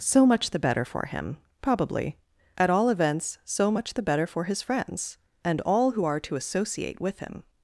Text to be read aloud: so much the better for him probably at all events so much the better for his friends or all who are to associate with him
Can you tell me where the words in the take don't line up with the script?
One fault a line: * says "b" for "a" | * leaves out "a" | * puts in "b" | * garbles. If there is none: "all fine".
* says "and" for "or"